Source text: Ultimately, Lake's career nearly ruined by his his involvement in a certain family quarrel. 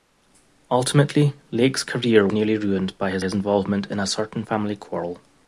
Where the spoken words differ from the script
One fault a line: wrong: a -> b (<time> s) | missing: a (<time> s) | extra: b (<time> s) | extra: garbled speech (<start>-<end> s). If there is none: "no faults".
no faults